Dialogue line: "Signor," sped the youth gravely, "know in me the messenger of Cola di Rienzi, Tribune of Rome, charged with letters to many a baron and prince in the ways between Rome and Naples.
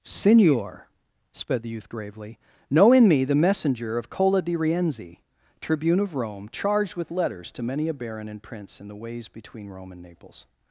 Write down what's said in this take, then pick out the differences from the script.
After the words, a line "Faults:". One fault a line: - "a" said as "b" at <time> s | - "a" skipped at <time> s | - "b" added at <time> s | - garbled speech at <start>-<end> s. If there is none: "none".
"Signor," sped the youth gravely, "know in me the messenger of Cola di Rienzi, Tribune of Rome, charged with letters to many a baron and prince in the ways between Rome and Naples.
Faults:
none